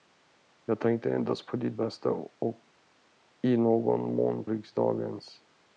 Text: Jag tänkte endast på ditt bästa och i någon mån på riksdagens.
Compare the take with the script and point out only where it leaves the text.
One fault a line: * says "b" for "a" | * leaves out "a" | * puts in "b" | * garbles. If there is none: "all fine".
* leaves out "på"